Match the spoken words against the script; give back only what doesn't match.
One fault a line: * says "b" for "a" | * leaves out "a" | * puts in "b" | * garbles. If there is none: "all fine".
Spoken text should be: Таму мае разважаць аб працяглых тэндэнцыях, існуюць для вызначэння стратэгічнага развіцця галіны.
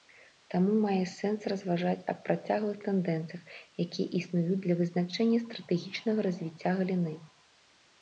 * puts in "сэнс"
* puts in "якія"